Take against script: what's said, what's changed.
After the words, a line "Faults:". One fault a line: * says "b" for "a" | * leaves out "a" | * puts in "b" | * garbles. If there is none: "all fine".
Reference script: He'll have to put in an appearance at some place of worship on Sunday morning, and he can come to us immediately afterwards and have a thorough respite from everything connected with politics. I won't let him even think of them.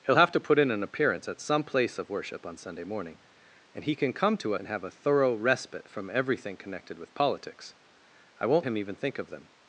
He'll have to put in an appearance at some place of worship on Sunday morning, and he can come to and have a thorough respite from everything connected with politics. I won't him even think of them.
Faults:
* leaves out "us immediately afterwards"
* leaves out "let"